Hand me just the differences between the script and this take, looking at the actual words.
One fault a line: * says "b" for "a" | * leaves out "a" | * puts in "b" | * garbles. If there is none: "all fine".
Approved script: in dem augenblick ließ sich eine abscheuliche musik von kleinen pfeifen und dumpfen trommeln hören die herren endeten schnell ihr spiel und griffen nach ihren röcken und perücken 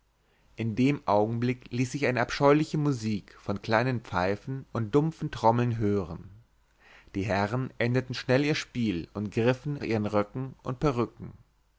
* leaves out "nach"